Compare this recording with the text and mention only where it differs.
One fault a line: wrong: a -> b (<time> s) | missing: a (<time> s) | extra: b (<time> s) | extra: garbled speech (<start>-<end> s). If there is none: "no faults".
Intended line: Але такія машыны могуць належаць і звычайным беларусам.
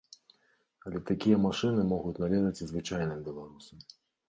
no faults